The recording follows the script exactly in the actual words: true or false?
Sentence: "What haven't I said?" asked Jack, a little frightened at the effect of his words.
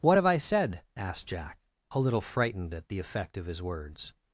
false